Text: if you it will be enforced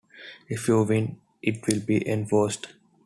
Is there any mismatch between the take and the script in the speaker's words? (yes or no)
yes